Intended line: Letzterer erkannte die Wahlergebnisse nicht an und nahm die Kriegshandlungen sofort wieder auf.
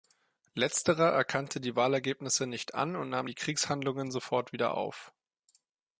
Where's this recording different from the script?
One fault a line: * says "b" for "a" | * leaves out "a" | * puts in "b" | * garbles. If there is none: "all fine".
all fine